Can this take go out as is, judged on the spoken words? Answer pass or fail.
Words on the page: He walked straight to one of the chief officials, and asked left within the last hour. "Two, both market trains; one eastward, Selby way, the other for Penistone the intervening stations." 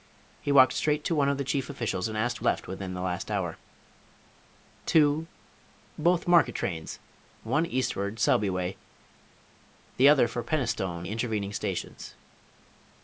pass